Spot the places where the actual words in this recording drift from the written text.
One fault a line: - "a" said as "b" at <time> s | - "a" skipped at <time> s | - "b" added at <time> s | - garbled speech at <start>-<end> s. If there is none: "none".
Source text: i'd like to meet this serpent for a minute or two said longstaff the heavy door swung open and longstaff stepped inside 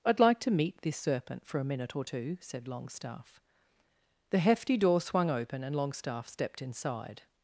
- "heavy" said as "hefty" at 4.4 s